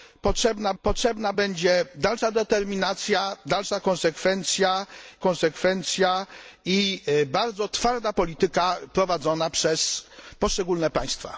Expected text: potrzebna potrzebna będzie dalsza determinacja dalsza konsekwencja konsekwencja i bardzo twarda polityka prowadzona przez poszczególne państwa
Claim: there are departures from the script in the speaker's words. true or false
false